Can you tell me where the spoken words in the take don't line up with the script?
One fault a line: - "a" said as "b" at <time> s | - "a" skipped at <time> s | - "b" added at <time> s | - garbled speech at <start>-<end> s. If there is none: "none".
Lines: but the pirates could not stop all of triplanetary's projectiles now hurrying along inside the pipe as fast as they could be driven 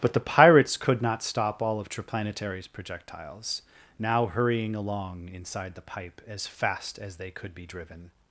none